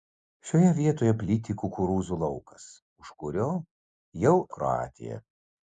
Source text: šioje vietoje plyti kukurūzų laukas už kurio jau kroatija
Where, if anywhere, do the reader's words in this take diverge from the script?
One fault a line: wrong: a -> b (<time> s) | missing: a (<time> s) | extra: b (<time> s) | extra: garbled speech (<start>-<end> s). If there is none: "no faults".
no faults